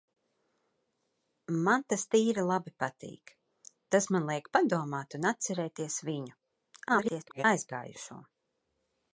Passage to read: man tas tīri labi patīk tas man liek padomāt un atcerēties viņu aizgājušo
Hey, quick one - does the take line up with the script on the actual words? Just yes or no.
no